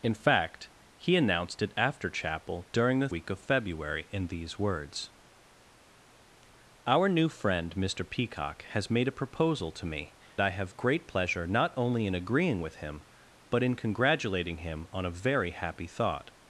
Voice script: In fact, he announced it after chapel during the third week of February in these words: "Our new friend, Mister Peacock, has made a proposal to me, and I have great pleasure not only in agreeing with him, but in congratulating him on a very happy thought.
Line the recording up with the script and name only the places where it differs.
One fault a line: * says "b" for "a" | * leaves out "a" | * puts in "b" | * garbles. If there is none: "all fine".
* leaves out "third"
* leaves out "and"